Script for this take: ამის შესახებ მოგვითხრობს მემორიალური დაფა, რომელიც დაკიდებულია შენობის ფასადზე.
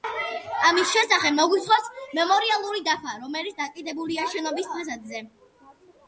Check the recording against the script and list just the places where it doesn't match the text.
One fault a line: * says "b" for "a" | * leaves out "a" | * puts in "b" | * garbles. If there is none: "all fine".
all fine